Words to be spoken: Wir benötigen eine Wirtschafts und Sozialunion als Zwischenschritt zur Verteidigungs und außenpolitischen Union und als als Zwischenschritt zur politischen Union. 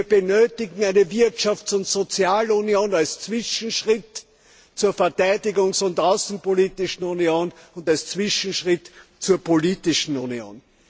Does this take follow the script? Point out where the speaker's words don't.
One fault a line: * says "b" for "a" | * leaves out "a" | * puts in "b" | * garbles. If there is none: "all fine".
* leaves out "als"